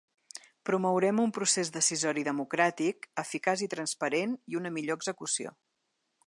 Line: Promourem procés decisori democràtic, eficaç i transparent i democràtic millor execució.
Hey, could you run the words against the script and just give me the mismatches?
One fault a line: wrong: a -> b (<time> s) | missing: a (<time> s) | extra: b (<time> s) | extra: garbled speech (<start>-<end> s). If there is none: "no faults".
extra: un (1.2 s)
wrong: democràtic -> una (4.6 s)